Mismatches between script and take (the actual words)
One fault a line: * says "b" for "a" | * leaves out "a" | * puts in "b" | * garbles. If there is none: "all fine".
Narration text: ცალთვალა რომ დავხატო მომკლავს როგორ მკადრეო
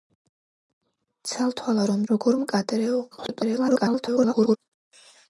* leaves out "დავხატო მომკლავს"
* garbles